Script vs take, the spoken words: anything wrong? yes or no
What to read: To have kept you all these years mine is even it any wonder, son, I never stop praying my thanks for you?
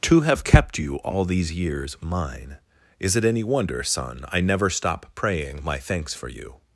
yes